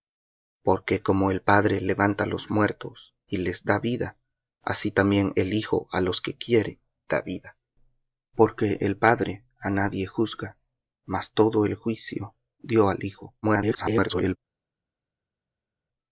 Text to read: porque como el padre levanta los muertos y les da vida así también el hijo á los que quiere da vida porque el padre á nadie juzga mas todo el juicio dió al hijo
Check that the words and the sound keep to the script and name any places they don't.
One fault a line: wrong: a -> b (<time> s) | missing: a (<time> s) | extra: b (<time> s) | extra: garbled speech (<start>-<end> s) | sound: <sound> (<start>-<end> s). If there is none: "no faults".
extra: garbled speech (13.4-14.4 s)